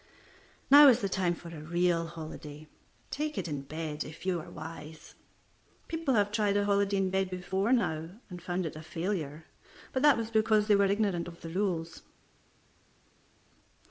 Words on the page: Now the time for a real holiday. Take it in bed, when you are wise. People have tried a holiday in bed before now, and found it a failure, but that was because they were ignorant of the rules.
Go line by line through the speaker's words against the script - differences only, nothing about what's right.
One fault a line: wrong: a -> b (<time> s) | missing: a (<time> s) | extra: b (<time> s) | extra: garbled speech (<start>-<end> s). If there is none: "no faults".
extra: is (0.9 s)
wrong: when -> if (4.0 s)